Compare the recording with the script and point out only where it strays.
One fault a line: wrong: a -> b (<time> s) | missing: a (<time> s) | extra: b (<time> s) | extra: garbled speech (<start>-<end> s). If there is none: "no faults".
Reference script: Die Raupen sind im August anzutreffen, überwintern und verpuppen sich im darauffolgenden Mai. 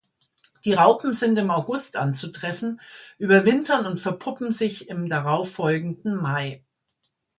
no faults